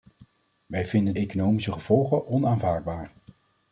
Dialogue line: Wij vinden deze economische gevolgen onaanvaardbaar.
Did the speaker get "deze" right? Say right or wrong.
wrong